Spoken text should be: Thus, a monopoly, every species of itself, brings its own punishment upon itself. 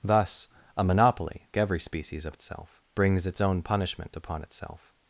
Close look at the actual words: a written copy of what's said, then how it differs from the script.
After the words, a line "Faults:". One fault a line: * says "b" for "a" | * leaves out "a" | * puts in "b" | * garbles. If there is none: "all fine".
Thus, a monopoly, every species of itself, brings its own punishment upon itself.
Faults:
all fine